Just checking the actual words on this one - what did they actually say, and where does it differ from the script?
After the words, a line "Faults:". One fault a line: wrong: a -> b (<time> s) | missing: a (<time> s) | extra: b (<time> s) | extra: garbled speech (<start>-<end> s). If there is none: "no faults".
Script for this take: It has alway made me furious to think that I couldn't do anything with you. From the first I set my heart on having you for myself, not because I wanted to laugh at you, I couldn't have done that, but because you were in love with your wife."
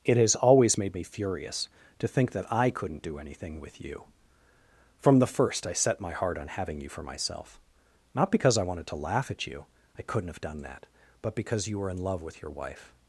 It has always made me furious to think that I couldn't do anything with you. From the first I set my heart on having you for myself, not because I wanted to laugh at you, I couldn't have done that, but because you were in love with your wife."
Faults:
wrong: alway -> always (0.3 s)